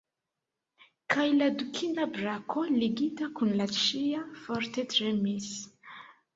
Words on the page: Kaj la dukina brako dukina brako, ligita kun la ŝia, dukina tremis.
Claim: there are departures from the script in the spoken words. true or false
true